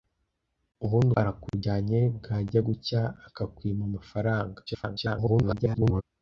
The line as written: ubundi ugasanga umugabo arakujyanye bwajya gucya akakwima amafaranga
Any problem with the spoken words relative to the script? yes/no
yes